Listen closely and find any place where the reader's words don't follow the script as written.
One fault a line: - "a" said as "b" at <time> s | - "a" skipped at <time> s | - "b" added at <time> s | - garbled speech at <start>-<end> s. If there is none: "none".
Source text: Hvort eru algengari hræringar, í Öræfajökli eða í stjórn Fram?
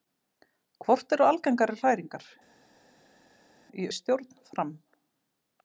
- "Öræfajökli eða" skipped at 3.9 s